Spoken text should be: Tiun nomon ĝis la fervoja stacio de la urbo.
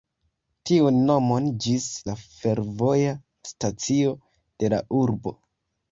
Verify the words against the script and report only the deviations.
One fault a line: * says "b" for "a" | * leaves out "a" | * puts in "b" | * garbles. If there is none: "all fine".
all fine